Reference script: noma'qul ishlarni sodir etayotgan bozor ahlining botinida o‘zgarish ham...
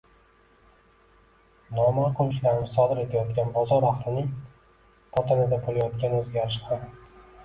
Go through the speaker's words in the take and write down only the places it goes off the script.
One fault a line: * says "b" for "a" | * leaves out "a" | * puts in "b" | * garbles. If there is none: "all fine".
* puts in "bo‘layotgan"